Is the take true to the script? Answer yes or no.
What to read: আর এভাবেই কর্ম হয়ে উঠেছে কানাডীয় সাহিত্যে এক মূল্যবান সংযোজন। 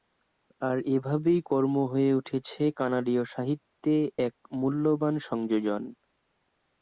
yes